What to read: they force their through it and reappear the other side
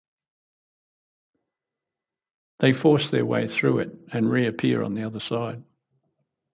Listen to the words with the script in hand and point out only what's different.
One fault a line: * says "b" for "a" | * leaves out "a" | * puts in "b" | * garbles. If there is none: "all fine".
* puts in "way"
* puts in "on"